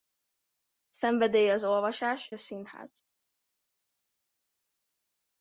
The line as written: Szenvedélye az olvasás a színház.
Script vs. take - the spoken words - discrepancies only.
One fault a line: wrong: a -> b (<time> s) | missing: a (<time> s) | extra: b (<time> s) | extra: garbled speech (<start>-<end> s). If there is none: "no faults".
no faults